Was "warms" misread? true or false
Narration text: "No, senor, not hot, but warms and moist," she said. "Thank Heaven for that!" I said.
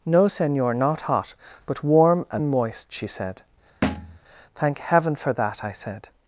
true